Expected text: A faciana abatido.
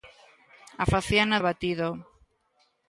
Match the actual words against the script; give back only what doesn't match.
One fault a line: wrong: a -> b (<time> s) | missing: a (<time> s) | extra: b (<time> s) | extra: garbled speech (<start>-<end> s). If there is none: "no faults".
no faults